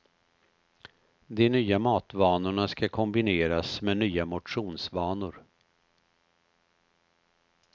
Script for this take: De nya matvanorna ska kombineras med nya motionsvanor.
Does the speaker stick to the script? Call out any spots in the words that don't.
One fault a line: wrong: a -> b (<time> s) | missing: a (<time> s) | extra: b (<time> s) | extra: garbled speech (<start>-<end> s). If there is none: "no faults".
no faults